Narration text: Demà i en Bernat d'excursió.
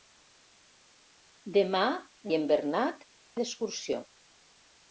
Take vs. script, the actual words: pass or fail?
pass